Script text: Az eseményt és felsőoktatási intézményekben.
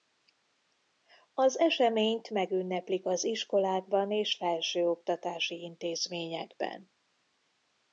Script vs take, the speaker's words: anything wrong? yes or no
yes